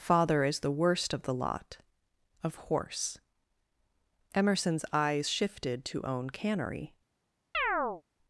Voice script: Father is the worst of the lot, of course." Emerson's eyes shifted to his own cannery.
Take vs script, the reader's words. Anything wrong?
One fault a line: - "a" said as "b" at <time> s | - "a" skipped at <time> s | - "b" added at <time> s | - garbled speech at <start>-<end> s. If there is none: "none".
- "course" said as "horse" at 2.5 s
- "his" skipped at 6.0 s